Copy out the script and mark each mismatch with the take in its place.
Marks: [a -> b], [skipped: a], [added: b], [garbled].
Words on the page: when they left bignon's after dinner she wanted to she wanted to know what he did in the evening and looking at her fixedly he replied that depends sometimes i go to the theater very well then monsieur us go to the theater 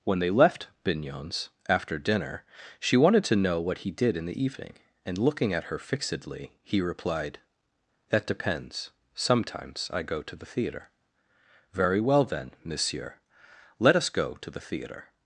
when they left bignon's after dinner she wanted to [skipped: she wanted to] know what he did in the evening and looking at her fixedly he replied that depends sometimes i go to the theater very well then monsieur [added: let] us go to the theater